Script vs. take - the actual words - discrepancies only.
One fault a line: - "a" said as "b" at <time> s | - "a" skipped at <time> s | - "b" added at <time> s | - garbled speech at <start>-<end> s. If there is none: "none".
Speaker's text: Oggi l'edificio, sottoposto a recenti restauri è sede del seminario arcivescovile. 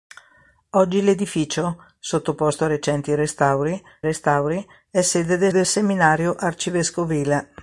- "restauri" added at 4.0 s
- "del" added at 5.5 s